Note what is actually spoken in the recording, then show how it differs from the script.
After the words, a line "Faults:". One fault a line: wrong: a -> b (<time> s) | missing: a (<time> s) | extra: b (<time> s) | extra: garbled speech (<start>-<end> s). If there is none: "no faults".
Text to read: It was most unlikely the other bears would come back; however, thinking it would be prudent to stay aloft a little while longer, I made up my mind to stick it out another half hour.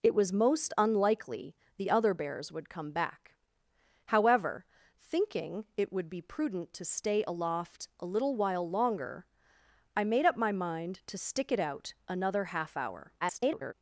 It was most unlikely the other bears would come back; however, thinking it would be prudent to stay aloft a little while longer, I made up my mind to stick it out another half hour. [garbled]
Faults:
extra: garbled speech (13.2-13.7 s)